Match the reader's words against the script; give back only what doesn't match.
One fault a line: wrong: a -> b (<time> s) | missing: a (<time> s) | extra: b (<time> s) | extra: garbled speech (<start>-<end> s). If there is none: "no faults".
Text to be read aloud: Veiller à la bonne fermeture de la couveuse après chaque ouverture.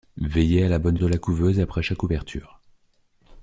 missing: fermeture (1.0 s)